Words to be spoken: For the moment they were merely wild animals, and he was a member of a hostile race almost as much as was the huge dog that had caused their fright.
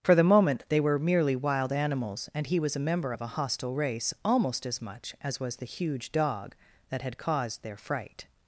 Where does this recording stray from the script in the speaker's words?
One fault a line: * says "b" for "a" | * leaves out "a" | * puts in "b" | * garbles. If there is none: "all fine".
all fine